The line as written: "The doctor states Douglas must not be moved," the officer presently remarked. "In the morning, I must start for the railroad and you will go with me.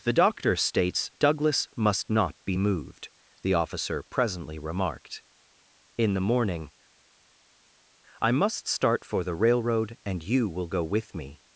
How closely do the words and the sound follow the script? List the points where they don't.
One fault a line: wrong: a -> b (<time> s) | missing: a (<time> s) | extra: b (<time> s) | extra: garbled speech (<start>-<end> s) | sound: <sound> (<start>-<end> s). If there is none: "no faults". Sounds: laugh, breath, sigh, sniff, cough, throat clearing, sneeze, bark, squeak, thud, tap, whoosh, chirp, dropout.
no faults